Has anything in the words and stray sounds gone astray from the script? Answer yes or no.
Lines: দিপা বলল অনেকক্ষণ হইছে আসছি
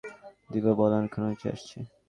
no